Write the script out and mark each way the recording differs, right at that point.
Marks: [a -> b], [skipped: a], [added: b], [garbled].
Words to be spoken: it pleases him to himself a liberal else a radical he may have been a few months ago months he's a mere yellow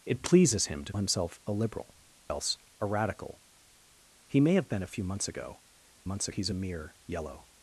it pleases him to himself a liberal else a radical he may have been a few months ago months he's a mere yellow